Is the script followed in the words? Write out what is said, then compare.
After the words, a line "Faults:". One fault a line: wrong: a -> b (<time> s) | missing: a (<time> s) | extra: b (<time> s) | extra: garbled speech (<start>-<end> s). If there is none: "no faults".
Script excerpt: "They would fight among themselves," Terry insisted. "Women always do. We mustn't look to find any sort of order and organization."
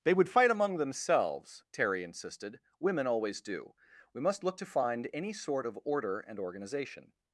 "They would fight among themselves," Terry insisted. "Women always do. We must look to find any sort of order and organization."
Faults:
wrong: mustn't -> must (4.2 s)